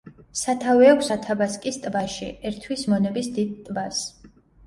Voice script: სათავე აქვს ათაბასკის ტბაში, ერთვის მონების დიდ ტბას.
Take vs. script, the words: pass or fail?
pass